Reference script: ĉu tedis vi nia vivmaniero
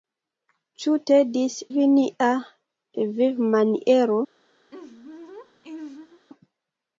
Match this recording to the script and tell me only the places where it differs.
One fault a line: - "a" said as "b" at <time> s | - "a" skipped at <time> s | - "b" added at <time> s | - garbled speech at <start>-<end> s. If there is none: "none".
none